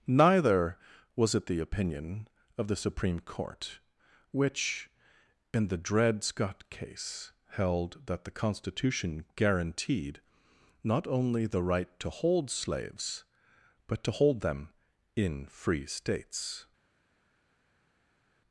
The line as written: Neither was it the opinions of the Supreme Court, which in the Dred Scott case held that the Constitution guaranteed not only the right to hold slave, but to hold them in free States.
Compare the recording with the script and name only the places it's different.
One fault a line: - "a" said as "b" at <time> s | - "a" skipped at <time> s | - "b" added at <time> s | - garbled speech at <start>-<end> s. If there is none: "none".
- "opinions" said as "opinion" at 1.6 s
- "slave" said as "slaves" at 12.5 s